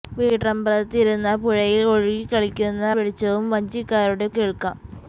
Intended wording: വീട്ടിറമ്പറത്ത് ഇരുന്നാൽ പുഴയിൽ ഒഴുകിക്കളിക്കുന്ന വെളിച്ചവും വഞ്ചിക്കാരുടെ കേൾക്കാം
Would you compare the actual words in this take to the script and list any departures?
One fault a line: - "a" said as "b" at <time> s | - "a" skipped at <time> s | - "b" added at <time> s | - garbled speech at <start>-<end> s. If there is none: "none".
none